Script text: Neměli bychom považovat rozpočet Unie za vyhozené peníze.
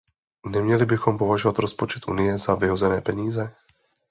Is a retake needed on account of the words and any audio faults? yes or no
no